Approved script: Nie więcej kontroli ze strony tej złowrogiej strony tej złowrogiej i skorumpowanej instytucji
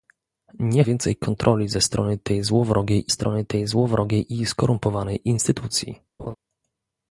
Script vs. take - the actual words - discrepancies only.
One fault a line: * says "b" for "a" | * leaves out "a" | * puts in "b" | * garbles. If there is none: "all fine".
all fine